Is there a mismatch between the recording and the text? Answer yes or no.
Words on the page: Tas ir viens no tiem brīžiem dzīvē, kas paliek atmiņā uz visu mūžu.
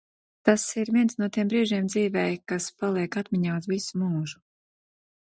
no